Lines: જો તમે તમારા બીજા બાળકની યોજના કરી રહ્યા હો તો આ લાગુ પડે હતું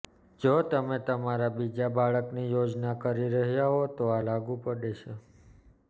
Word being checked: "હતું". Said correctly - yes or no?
no